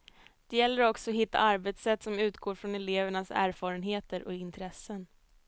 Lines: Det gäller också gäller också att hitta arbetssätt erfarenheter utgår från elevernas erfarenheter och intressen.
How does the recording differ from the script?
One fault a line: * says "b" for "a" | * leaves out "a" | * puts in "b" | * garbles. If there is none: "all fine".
* leaves out "gäller också"
* says "som" for "erfarenheter"